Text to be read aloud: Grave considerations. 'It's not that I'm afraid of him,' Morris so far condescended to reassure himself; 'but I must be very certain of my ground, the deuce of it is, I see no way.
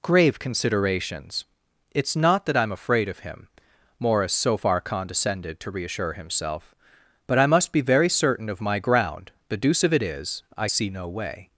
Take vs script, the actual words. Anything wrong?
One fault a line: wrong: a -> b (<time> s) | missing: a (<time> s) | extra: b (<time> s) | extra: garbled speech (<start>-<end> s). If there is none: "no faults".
no faults